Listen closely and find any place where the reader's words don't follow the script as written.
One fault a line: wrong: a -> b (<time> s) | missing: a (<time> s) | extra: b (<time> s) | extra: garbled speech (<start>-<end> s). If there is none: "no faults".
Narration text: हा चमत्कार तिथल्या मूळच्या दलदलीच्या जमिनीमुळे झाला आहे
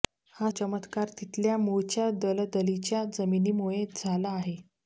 no faults